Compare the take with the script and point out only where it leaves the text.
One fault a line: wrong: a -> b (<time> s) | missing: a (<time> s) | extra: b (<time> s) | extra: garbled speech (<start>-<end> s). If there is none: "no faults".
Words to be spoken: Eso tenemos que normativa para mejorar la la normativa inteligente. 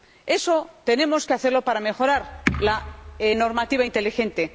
wrong: normativa -> hacerlo (1.3 s)
missing: la (2.8 s)